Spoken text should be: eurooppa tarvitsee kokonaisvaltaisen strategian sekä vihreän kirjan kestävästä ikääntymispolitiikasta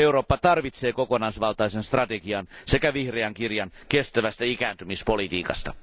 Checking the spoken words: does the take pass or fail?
pass